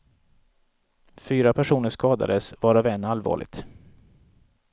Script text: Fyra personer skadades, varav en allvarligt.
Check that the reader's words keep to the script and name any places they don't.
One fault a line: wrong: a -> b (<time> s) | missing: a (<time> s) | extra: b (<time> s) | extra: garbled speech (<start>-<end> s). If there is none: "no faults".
no faults